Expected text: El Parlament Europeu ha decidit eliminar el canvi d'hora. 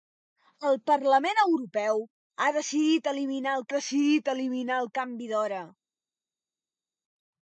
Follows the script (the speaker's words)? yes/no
no